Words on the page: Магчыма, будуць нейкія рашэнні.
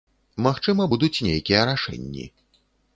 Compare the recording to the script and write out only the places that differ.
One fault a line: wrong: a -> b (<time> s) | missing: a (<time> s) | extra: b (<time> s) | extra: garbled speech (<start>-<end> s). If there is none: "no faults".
no faults